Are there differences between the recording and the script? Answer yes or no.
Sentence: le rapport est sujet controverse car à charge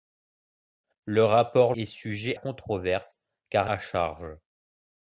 no